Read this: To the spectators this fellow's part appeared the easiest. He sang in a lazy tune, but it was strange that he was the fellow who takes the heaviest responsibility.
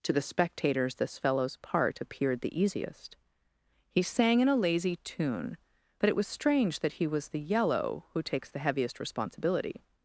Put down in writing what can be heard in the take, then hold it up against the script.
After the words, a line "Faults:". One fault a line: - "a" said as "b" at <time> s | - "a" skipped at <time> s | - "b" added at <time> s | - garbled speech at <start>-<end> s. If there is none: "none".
To the spectators this fellow's part appeared the easiest. He sang in a lazy tune, but it was strange that he was the yellow who takes the heaviest responsibility.
Faults:
- "fellow" said as "yellow" at 7.4 s